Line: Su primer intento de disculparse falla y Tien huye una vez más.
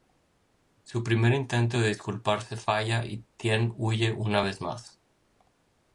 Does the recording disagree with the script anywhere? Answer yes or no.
no